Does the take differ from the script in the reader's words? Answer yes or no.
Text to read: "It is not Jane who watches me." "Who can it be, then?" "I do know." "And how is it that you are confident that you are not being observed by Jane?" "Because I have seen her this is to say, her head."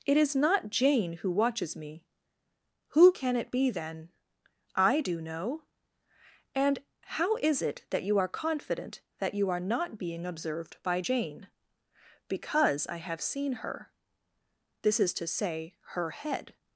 no